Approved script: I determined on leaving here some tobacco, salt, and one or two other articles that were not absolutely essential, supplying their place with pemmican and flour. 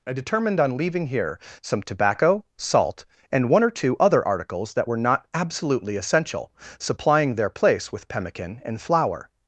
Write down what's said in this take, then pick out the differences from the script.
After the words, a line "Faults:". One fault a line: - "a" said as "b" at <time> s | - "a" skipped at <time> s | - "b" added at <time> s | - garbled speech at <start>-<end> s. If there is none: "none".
I determined on leaving here some tobacco, salt, and one or two other articles that were not absolutely essential, supplying their place with pemmican and flour.
Faults:
none